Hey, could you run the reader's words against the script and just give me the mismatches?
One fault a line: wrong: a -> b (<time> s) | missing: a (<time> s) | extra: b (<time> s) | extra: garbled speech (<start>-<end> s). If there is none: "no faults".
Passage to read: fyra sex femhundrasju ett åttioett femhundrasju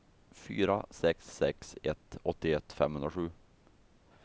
wrong: femhundrasju -> sex (1.4 s)